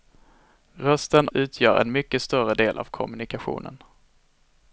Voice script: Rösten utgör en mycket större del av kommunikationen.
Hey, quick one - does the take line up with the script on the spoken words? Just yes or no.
yes